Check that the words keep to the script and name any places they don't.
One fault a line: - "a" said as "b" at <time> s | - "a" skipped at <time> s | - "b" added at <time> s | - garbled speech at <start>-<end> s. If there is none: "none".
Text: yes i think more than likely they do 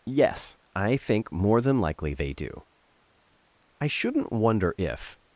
- "i shouldn't wonder if" added at 3.8 s